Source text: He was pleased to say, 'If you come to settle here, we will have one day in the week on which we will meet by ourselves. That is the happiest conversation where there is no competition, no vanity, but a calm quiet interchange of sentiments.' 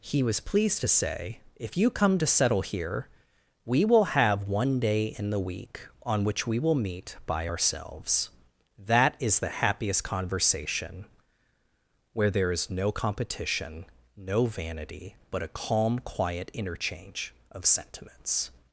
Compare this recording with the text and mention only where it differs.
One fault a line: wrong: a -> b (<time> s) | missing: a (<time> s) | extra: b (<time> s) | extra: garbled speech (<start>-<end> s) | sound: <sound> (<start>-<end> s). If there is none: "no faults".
no faults